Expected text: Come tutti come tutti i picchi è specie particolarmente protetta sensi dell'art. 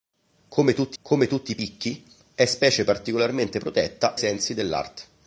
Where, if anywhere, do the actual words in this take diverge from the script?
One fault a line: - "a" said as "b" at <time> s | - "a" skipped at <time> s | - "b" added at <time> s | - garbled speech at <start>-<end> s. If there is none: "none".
none